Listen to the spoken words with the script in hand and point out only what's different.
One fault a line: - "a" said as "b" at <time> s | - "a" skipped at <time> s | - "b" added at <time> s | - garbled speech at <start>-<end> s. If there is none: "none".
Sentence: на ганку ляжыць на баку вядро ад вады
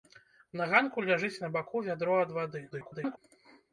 - garbled speech at 2.7-3.2 s